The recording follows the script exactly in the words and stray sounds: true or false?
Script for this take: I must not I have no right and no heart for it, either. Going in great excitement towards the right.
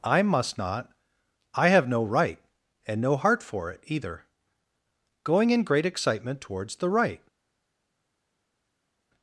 true